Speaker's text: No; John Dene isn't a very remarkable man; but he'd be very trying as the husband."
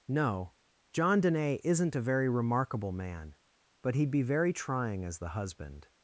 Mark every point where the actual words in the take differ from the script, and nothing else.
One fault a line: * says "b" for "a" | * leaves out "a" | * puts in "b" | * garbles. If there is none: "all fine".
all fine